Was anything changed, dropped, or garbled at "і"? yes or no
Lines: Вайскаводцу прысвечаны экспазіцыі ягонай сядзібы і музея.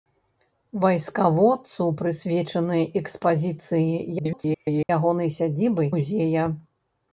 yes